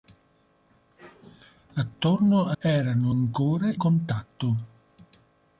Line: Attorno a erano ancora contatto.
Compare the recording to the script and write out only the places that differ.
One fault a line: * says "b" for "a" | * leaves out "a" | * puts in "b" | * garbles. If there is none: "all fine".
all fine